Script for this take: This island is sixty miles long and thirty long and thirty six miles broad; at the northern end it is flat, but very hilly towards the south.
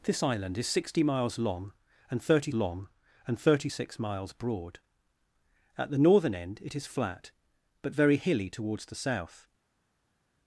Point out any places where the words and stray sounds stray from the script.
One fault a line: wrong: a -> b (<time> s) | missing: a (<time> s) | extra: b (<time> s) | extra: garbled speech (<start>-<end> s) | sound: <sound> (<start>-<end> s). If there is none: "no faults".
no faults